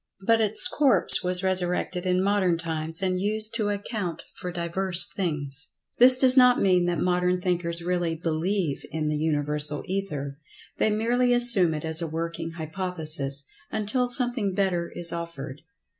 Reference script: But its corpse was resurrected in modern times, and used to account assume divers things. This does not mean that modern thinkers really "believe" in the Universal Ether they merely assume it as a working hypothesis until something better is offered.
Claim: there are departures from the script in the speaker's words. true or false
true